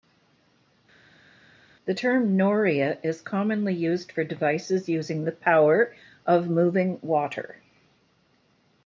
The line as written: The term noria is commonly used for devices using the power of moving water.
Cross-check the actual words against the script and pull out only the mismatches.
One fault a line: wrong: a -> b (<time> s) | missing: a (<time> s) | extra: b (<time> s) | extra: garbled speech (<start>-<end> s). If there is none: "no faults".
no faults